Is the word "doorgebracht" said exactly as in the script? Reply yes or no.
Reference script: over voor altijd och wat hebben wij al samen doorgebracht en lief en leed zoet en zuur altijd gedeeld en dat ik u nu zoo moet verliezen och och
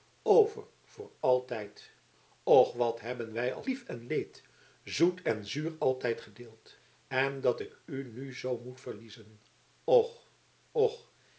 no